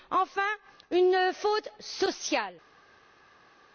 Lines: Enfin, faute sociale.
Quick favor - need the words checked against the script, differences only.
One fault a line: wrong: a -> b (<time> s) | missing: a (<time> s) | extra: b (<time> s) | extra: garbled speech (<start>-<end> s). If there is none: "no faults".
extra: une (0.9 s)